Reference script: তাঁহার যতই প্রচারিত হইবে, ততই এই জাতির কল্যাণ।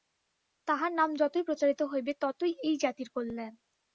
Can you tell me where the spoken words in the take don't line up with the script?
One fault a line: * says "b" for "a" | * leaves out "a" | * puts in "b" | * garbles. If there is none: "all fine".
* puts in "নাম"